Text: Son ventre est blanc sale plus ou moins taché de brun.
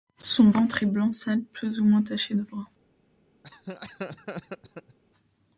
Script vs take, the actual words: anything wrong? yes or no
no